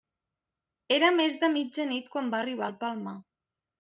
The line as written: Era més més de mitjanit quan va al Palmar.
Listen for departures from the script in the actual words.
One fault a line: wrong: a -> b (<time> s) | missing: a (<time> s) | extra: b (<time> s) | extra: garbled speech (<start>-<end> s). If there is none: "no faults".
missing: més (1.4 s)
extra: arribar (2.4 s)